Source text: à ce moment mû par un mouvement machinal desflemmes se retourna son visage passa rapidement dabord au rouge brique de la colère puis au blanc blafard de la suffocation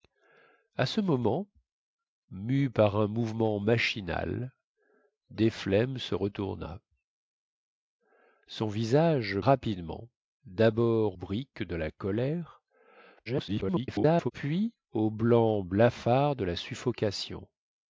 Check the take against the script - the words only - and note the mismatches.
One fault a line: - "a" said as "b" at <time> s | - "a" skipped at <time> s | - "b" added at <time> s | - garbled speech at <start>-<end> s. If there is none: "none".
- "passa" skipped at 9.4 s
- "au rouge" skipped at 11.2 s
- garbled speech at 13.3-14.3 s